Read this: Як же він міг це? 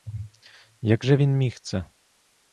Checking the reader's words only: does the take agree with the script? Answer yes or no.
yes